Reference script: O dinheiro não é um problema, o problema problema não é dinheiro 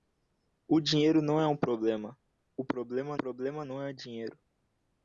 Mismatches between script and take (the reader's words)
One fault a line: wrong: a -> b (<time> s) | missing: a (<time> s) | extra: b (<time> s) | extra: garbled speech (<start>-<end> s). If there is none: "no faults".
no faults